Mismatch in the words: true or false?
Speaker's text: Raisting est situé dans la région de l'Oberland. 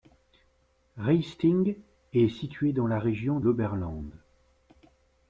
true